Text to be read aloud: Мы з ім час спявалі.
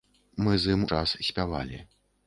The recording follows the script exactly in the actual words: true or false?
true